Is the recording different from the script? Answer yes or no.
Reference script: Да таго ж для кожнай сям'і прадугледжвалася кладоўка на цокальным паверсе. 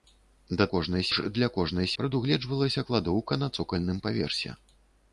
yes